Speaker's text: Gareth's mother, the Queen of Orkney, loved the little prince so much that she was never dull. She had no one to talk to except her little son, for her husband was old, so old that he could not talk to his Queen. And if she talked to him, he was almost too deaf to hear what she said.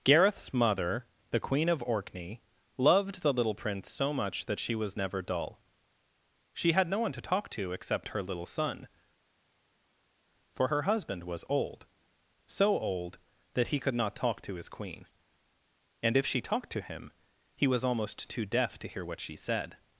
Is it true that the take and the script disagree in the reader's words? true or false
false